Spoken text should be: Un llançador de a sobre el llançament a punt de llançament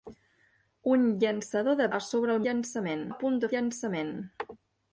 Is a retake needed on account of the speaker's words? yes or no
no